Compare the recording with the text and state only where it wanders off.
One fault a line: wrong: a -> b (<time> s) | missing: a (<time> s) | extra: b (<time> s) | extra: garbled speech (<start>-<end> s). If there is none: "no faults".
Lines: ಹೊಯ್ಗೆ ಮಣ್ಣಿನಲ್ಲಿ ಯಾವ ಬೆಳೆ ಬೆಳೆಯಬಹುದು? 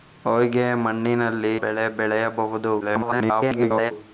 missing: ಯಾವ (1.6 s)
extra: garbled speech (2.8-3.9 s)